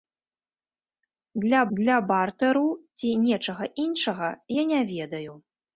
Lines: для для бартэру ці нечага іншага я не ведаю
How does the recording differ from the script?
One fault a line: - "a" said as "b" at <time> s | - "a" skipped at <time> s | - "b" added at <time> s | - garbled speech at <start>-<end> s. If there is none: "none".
none